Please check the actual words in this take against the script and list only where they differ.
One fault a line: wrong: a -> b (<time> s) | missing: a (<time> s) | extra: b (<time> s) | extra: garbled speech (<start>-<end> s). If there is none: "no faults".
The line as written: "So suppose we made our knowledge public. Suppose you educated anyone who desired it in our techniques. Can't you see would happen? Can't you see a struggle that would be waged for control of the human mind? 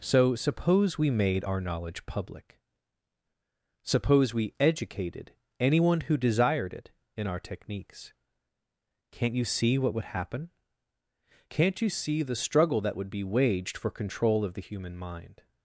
wrong: you -> we (4.3 s)
extra: what (9.8 s)
wrong: a -> the (12.2 s)